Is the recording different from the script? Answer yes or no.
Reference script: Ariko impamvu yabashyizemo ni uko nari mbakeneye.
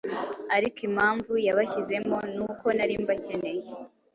no